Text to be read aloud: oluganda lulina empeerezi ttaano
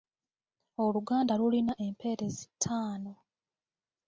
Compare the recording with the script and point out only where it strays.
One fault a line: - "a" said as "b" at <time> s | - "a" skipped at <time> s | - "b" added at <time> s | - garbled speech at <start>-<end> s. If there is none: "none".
none